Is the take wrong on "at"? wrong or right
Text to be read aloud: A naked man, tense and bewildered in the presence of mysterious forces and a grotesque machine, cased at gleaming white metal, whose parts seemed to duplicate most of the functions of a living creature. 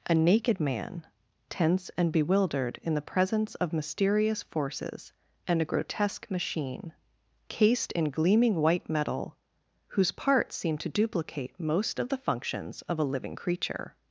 wrong